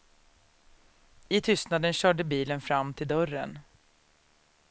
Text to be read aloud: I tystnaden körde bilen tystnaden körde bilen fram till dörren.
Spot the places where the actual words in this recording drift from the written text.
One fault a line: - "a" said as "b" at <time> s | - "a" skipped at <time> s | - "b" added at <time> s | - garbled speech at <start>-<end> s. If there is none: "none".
- "tystnaden körde bilen" skipped at 2.6 s